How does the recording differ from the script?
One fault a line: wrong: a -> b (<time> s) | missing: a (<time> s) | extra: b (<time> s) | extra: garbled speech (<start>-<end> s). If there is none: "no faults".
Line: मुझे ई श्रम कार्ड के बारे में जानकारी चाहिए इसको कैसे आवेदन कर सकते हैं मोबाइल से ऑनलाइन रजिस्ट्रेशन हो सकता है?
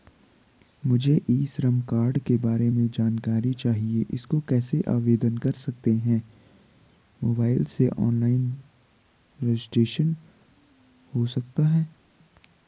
no faults